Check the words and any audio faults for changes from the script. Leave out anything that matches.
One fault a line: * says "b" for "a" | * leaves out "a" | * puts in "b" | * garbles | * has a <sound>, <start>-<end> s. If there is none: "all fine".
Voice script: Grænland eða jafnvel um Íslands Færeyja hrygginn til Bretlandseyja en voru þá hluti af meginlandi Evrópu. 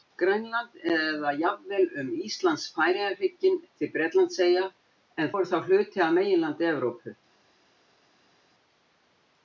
all fine